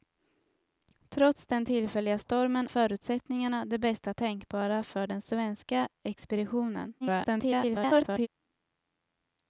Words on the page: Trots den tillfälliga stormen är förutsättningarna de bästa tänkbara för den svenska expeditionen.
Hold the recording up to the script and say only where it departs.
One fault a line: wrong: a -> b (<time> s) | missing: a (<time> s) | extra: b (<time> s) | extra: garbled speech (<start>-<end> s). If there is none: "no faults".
missing: är (2.7 s)
extra: garbled speech (7.0-8.3 s)